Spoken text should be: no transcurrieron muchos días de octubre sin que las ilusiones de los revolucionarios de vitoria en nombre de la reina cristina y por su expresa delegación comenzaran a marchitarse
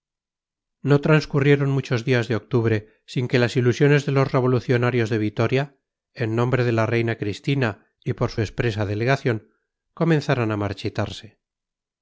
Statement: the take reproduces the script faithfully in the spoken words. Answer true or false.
true